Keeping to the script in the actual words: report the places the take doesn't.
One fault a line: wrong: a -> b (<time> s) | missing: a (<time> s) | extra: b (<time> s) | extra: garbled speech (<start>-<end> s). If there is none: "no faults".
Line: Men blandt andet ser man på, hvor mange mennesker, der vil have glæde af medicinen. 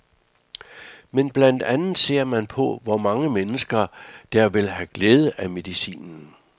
no faults